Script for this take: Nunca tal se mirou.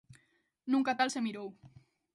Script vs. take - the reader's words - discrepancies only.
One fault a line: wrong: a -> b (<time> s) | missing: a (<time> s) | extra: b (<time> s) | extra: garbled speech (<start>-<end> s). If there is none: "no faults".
no faults